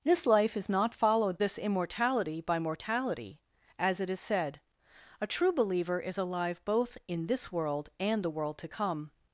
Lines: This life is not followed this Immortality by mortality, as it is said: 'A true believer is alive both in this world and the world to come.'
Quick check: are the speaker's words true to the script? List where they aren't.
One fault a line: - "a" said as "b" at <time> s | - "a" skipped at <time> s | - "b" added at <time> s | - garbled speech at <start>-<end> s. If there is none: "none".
none